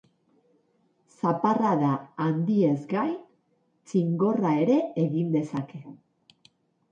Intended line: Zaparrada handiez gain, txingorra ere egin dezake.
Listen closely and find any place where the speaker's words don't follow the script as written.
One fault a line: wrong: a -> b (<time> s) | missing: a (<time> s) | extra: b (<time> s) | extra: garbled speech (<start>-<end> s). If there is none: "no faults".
no faults